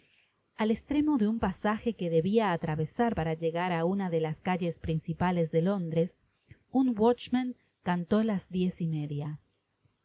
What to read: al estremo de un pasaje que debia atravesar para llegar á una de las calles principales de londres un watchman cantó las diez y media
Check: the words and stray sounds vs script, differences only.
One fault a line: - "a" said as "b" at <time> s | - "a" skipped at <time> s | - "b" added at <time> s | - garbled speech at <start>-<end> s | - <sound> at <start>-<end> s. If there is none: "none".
none